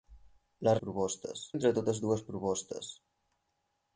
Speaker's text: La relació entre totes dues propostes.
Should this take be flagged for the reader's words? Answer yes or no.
yes